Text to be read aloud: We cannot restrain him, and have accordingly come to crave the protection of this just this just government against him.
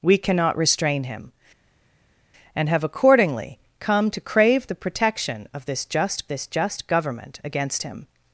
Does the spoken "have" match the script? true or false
true